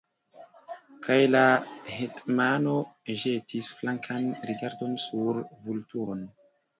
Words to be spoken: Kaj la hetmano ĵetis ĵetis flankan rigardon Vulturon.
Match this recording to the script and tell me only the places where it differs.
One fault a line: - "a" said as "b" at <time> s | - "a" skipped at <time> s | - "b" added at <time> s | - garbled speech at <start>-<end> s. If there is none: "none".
- "ĵetis" skipped at 3.7 s
- "sur" added at 5.1 s